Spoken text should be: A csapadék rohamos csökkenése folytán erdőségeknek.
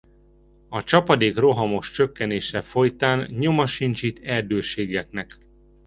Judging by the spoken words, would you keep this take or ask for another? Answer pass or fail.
fail